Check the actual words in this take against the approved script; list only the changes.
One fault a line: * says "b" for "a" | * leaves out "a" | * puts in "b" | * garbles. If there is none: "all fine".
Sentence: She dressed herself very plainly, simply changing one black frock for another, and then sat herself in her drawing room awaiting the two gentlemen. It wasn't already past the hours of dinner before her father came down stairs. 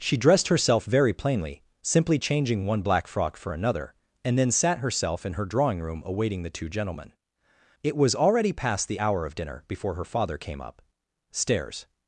* says "was" for "wasn't"
* says "hour" for "hours"
* says "up" for "down"